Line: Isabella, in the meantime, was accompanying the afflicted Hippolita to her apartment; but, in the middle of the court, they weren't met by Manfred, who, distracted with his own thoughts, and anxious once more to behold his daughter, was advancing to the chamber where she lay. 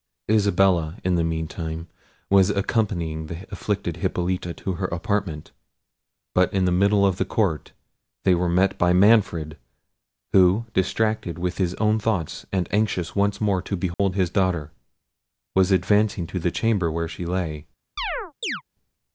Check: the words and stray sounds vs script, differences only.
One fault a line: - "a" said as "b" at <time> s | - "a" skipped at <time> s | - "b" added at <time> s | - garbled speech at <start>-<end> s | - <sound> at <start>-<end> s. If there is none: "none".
- "weren't" said as "were" at 8.3 s
- dropout at 13.9-14.0 s
- chirp at 18.0-18.6 s